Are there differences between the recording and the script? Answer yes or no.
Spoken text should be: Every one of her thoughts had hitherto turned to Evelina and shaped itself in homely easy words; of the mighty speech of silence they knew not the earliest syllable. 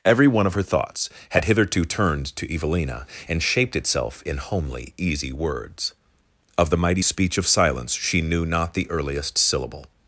yes